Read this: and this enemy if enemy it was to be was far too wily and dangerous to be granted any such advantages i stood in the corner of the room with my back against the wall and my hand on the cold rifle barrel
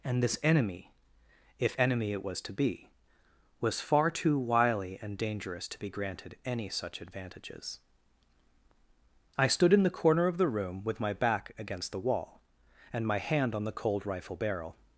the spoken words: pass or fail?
pass